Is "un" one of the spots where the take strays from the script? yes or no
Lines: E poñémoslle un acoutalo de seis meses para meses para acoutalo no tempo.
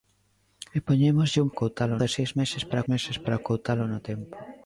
no